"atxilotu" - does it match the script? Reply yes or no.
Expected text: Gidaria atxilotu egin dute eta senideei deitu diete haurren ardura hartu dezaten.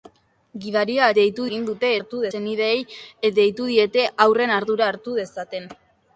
no